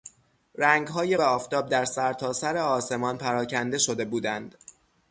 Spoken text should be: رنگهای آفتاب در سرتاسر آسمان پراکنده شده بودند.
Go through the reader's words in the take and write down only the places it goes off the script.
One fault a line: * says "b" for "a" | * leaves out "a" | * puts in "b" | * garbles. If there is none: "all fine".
all fine